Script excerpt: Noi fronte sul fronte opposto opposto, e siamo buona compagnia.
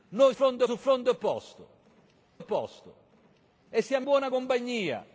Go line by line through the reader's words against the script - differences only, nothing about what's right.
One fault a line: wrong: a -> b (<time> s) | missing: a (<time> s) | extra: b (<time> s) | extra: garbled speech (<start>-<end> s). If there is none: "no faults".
no faults